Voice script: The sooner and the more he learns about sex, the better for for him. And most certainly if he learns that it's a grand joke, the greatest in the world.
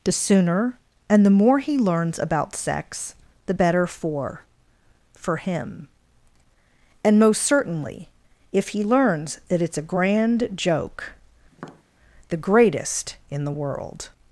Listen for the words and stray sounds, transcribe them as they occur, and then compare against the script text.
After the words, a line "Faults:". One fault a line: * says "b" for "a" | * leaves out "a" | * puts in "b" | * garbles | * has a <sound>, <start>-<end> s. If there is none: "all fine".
The sooner and the more he learns about sex, the better for for him. And most certainly if he learns that it's a grand joke, the greatest in the world.
Faults:
* has a tap, 11.5-11.8 s